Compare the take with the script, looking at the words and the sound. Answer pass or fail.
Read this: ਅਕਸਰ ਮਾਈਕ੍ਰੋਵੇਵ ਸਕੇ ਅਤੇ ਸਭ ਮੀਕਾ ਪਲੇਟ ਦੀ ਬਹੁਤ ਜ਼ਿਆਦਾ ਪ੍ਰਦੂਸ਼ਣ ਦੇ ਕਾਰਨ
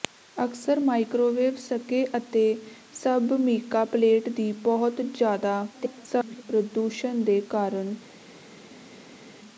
fail